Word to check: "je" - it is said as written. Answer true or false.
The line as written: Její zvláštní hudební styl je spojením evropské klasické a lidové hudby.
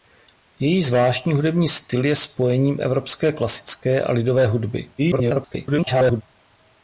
true